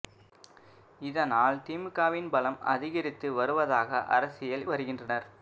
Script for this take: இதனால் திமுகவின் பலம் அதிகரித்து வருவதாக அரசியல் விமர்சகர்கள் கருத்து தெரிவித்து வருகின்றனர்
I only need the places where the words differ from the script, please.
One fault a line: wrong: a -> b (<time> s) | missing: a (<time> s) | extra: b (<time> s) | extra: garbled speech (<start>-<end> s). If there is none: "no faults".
missing: விமர்சகர்கள் கருத்து தெரிவித்து (4.7 s)